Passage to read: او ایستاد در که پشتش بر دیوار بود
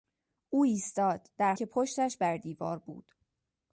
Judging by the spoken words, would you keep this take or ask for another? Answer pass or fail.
pass